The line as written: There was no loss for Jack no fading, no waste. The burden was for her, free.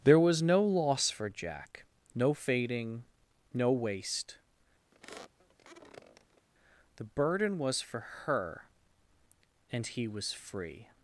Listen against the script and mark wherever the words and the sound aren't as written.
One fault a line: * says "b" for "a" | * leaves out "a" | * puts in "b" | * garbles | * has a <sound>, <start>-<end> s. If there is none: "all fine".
* has a squeak, 4.9-6.5 s
* puts in "and he was"